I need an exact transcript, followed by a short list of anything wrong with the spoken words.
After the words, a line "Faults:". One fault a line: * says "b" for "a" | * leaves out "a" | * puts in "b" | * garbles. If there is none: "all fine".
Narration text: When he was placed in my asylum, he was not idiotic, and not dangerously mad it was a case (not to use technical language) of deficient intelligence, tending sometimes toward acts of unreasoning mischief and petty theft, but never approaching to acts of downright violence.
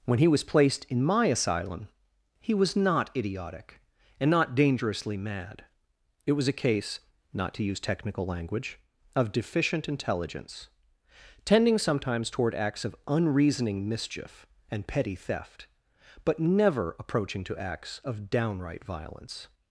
When he was placed in my asylum, he was not idiotic, and not dangerously mad it was a case (not to use technical language) of deficient intelligence, tending sometimes toward acts of unreasoning mischief and petty theft, but never approaching to acts of downright violence.
Faults:
all fine